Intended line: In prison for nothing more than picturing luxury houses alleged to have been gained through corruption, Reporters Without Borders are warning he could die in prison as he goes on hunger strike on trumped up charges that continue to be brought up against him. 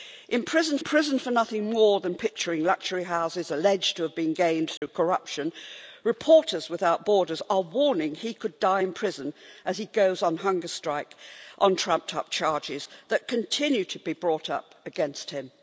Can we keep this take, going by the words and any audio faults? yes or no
no